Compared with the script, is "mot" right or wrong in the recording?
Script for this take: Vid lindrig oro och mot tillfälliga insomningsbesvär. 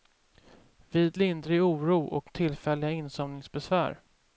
wrong